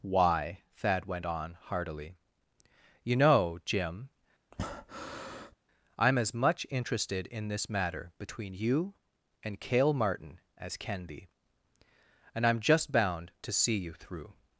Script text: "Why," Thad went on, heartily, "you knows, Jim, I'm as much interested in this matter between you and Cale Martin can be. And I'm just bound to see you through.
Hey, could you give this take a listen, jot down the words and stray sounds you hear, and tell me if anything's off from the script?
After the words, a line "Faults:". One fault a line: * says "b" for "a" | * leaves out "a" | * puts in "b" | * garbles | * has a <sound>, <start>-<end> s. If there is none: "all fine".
"Why," Thad went on, heartily, "you know, Jim, I'm as much interested in this matter between you and Cale Martin as can be. And I'm just bound to see you through.
Faults:
* says "know" for "knows"
* has a breath, 4.5-5.5 s
* puts in "as"